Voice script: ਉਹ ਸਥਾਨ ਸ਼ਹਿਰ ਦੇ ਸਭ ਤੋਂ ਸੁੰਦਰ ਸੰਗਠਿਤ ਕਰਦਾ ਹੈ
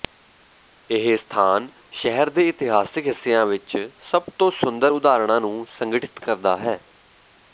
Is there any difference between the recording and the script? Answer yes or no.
yes